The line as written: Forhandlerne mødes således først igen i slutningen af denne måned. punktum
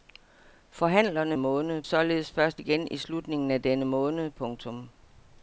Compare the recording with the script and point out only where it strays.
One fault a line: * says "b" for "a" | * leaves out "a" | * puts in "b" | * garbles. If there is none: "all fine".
* says "måned" for "mødes"